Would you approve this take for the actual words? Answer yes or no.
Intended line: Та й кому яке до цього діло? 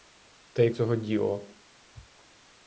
no